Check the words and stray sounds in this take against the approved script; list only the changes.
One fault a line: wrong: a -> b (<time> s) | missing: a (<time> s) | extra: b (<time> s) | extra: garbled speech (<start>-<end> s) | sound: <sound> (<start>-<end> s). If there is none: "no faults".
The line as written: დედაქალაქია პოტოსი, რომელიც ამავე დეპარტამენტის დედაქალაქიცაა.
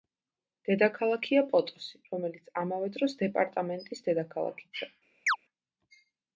extra: დროს (3.0 s)
sound: chirp (5.3-5.4 s)